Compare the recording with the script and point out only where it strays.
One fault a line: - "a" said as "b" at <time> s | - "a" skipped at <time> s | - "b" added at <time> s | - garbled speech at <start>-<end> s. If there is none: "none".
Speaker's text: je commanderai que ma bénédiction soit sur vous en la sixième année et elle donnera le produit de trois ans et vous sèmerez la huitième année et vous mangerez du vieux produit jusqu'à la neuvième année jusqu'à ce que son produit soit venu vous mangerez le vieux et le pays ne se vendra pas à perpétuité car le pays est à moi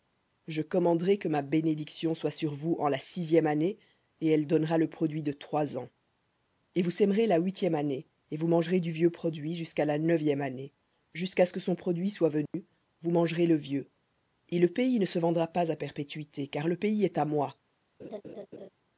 none